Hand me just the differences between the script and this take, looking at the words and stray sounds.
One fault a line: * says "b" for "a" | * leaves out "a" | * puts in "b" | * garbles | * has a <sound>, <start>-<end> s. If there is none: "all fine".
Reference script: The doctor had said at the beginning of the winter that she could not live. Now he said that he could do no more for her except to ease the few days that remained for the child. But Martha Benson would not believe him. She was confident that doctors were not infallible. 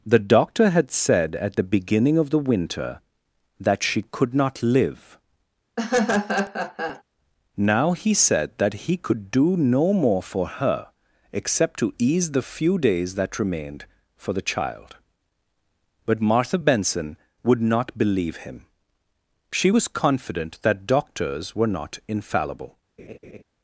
* has a laugh, 5.8-7.0 s
* has a laugh, 23.0-23.4 s